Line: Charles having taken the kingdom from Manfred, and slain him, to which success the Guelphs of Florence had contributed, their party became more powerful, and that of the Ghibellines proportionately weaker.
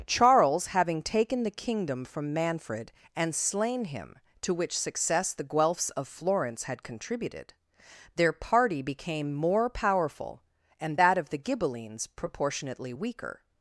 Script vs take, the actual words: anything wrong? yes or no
no